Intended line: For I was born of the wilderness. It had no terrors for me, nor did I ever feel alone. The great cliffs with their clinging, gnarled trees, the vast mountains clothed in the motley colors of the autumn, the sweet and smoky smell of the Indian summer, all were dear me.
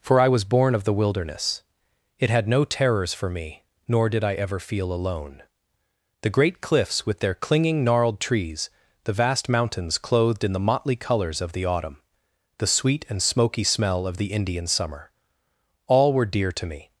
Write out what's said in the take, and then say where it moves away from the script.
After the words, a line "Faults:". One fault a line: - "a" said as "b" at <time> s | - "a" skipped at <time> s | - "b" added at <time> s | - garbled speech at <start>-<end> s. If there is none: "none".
For I was born of the wilderness. It had no terrors for me, nor did I ever feel alone. The great cliffs with their clinging, gnarled trees, the vast mountains clothed in the motley colors of the autumn, the sweet and smoky smell of the Indian summer, all were dear to me.
Faults:
- "to" added at 16.5 s